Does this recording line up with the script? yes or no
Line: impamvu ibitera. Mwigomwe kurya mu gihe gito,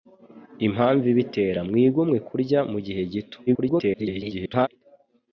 no